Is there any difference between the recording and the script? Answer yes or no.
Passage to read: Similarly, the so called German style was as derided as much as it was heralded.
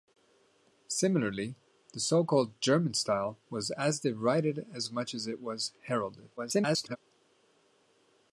yes